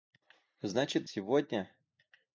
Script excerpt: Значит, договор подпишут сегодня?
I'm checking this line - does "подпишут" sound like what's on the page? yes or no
no